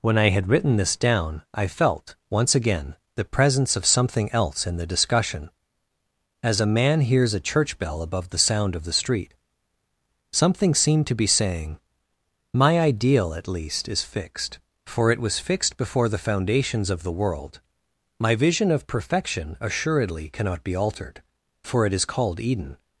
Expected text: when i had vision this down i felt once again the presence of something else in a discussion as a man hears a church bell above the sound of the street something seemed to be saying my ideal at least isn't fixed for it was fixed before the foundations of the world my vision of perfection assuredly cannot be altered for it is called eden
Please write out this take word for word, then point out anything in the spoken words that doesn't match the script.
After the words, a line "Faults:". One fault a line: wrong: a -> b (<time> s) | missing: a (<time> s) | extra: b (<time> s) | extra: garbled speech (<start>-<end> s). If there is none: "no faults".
when i had written this down i felt once again the presence of something else in the discussion as a man hears a church bell above the sound of the street something seemed to be saying my ideal at least is fixed for it was fixed before the foundations of the world my vision of perfection assuredly cannot be altered for it is called eden
Faults:
wrong: vision -> written (0.5 s)
wrong: a -> the (4.8 s)
wrong: isn't -> is (13.9 s)